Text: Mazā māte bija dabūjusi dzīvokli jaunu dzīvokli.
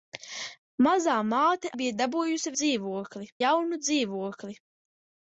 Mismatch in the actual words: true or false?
false